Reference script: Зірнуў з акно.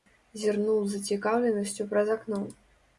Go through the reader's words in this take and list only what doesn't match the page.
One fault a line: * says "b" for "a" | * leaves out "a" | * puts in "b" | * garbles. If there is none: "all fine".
* puts in "зацікаўленасцю праз"